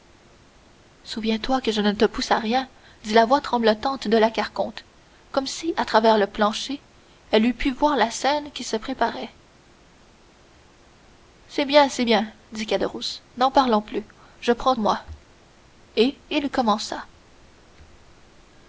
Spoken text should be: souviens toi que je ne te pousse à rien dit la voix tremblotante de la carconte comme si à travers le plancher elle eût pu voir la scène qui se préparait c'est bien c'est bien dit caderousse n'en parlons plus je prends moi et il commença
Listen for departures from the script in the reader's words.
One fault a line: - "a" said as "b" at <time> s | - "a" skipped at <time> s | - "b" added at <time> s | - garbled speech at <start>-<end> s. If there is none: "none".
none